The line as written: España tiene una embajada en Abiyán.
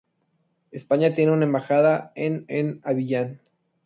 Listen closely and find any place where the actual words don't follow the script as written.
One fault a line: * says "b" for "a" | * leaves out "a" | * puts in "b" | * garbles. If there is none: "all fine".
* puts in "en"